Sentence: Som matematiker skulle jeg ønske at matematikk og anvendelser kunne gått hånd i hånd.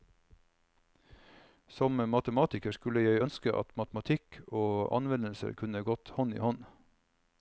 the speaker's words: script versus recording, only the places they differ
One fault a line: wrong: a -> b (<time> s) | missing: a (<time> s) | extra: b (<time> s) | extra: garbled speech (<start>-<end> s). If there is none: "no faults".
no faults